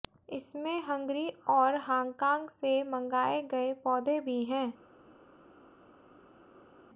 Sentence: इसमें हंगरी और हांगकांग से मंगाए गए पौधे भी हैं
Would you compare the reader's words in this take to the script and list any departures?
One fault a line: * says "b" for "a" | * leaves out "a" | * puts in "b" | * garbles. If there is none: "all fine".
all fine